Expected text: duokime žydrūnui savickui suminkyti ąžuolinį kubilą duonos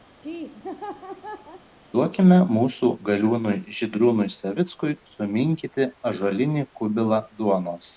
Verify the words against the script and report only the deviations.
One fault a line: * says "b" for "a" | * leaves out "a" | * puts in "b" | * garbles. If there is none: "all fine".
* puts in "mūsų galiūnui"